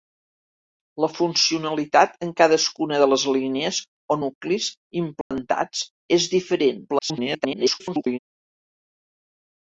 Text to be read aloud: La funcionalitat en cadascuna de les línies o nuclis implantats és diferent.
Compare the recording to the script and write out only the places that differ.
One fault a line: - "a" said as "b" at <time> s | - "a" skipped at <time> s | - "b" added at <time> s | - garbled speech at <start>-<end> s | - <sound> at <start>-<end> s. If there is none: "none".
- dropout at 5.2-5.3 s
- garbled speech at 6.9-8.2 s